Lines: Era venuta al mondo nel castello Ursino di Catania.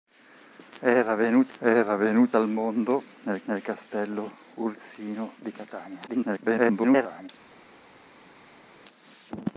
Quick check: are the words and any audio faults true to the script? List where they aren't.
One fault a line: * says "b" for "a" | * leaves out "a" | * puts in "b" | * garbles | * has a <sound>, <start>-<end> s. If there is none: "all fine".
* puts in "era venuta"
* puts in "nel"
* garbles